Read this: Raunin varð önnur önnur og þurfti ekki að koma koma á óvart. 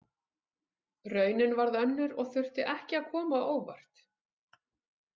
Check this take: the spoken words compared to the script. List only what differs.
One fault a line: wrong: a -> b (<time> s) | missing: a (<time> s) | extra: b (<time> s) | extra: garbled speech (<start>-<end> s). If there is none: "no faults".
missing: önnur (2.1 s)
missing: koma (3.4 s)